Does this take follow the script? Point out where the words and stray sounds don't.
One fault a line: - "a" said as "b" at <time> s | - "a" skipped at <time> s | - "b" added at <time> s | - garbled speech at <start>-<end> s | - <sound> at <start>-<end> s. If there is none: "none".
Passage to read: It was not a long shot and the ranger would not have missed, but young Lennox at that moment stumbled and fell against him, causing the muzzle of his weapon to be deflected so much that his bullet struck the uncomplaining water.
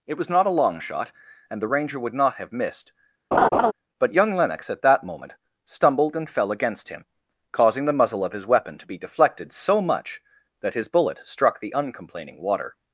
- laugh at 3.3-3.7 s